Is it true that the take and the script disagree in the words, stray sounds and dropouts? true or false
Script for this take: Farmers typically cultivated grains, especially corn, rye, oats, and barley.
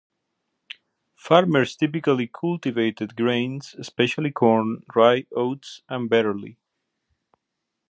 false